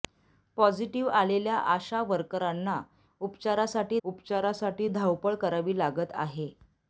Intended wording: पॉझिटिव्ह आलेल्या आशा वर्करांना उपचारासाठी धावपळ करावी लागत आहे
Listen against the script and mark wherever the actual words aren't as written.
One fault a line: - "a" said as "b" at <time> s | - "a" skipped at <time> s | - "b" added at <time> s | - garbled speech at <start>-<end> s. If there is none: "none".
- "उपचारासाठी" added at 4.0 s